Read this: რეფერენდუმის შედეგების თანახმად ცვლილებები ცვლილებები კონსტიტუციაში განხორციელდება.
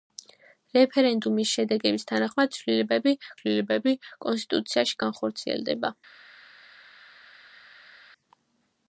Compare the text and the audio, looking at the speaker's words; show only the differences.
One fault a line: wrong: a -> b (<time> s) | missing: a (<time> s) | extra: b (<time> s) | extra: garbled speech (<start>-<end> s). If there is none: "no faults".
no faults